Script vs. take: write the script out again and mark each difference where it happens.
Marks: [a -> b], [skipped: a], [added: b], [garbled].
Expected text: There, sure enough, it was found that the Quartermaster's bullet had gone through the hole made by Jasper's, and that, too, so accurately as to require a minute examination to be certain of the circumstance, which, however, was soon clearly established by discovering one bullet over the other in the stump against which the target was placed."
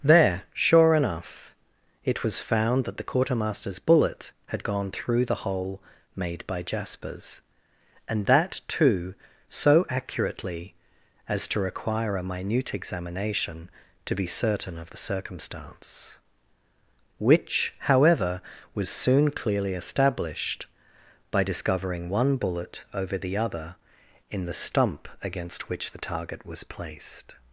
There, sure enough, it was found that the Quartermaster's bullet had gone through the hole made by Jasper's, and that, too, so accurately as to require a minute examination to be certain of the circumstance, which, however, was soon clearly established by discovering one bullet over the other in the stump against which the target was placed."